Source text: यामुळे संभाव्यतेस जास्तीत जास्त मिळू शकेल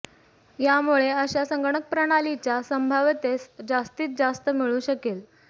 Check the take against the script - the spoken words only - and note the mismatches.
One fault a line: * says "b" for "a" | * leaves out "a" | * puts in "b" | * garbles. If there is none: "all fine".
* puts in "अशा संगणक प्रणालीच्या"